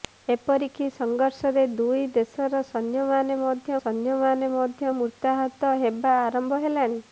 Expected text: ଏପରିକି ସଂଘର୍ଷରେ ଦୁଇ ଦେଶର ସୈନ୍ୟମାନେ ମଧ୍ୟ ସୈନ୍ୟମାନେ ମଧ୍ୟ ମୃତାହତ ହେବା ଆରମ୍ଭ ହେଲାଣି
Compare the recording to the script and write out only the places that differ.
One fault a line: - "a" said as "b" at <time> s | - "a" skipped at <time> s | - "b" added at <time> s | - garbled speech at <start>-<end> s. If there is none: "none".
none